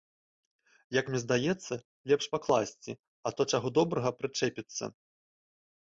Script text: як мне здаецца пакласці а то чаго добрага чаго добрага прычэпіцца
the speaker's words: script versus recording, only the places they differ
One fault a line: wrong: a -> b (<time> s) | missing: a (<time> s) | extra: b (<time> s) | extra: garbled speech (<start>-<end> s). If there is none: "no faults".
extra: лепш (2.1 s)
missing: чаго добрага (4.1 s)